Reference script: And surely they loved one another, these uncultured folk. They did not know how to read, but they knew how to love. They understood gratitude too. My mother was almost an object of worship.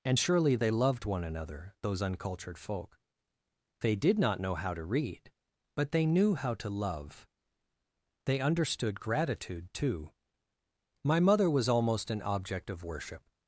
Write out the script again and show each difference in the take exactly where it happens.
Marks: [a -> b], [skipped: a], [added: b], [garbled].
And surely they loved one another, [these -> those] uncultured folk. They did not know how to read, but they knew how to love. They understood gratitude too. My mother was almost an object of worship.